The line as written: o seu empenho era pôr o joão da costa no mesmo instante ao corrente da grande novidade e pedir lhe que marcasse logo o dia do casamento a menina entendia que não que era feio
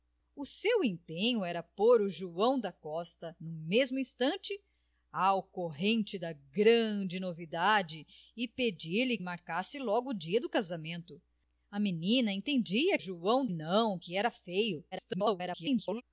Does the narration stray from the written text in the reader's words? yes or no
yes